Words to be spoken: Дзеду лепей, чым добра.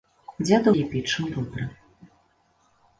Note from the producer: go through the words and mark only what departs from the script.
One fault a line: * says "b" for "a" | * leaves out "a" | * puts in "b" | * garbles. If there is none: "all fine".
all fine